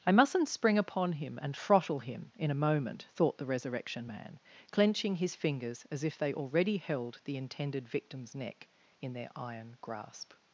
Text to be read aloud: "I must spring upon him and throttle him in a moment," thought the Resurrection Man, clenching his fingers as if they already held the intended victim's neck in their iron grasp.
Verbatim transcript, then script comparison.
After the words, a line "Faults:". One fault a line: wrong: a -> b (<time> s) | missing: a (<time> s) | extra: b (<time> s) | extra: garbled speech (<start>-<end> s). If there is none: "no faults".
"I mustn't spring upon him and throttle him in a moment," thought the Resurrection Man, clenching his fingers as if they already held the intended victim's neck in their iron grasp.
Faults:
wrong: must -> mustn't (0.1 s)